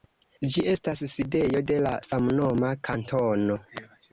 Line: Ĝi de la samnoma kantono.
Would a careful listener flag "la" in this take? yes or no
no